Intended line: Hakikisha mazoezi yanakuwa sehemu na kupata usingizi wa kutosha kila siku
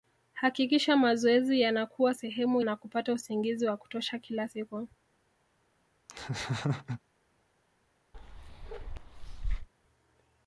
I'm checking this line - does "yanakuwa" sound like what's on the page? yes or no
yes